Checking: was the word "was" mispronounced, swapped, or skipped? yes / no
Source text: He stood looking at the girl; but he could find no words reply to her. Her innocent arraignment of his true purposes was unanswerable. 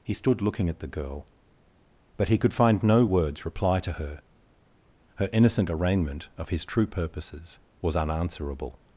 no